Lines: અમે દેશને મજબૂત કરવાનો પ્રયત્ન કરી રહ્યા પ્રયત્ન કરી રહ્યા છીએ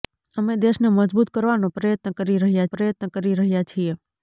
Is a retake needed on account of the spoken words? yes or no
no